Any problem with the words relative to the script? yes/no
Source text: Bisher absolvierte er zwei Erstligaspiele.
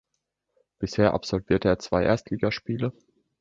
no